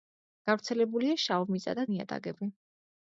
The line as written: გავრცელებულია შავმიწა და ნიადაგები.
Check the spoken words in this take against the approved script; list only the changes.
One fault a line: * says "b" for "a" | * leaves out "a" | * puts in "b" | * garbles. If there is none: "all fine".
all fine